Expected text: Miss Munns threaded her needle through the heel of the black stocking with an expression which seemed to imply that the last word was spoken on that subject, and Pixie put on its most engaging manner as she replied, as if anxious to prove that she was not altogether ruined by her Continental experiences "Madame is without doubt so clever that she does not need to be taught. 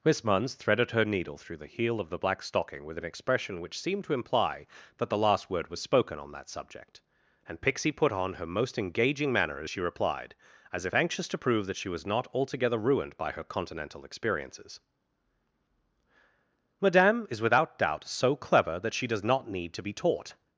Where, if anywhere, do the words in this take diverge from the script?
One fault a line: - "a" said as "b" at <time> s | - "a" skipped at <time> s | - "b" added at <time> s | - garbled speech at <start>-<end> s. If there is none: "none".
- "its" said as "her" at 8.3 s